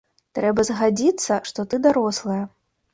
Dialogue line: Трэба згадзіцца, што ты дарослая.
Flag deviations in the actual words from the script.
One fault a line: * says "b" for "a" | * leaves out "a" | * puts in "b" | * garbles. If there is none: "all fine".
all fine